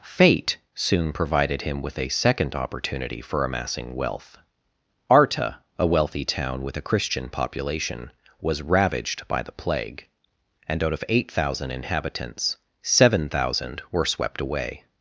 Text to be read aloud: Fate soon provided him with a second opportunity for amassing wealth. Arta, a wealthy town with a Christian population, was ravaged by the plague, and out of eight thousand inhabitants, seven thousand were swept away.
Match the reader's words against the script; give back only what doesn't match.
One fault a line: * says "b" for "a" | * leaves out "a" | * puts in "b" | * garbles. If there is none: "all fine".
all fine